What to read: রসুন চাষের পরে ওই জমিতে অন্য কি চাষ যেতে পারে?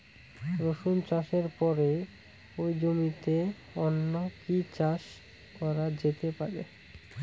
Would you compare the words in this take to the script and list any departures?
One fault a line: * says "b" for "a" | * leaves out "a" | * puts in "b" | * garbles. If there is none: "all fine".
* puts in "করা"